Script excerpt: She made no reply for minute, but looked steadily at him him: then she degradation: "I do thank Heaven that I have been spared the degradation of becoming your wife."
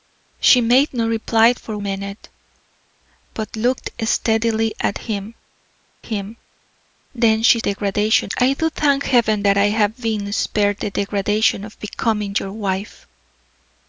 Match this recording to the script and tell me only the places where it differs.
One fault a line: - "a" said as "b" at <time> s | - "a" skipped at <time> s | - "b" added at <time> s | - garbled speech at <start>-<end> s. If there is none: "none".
none